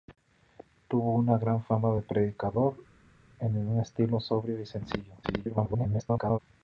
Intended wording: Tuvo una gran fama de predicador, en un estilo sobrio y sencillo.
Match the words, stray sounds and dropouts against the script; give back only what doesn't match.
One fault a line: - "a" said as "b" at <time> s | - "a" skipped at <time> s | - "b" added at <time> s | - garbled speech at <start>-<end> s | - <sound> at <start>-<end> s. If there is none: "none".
- garbled speech at 5.2-6.4 s